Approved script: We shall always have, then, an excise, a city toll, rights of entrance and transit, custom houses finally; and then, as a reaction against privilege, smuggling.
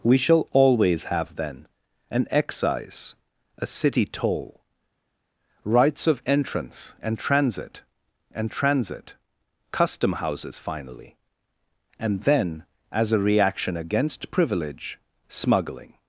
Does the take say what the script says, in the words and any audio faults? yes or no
no